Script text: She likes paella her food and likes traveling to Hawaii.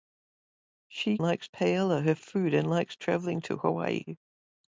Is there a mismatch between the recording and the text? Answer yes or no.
no